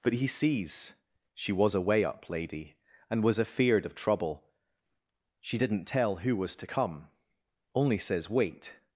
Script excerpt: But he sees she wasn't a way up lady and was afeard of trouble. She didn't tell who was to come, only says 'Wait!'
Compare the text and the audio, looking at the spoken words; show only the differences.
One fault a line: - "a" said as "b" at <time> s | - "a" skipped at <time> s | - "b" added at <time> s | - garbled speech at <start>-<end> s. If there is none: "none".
- "wasn't" said as "was" at 1.5 s